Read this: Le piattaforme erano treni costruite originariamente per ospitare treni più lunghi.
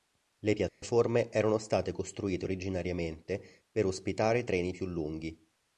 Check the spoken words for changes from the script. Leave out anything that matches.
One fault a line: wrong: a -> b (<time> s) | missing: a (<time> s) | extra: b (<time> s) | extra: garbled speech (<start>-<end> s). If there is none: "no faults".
wrong: treni -> state (1.6 s)